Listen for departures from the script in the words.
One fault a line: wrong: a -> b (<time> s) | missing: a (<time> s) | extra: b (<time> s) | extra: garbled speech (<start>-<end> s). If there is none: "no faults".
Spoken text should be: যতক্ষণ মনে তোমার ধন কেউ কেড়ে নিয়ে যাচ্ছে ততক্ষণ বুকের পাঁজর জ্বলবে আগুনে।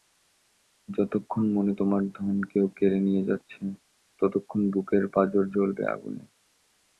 no faults